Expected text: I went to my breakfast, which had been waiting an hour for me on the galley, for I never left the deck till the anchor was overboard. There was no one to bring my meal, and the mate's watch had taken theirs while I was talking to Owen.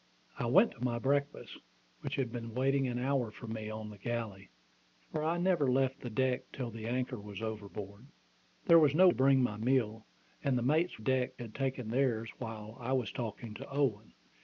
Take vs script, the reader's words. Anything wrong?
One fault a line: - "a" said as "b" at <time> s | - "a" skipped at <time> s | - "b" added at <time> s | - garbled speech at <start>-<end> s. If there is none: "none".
- "one" skipped at 9.1 s
- "watch" said as "deck" at 11.0 s